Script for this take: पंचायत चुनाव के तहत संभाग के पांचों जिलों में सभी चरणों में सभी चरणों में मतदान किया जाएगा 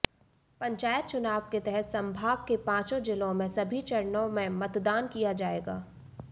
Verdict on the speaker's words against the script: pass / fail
fail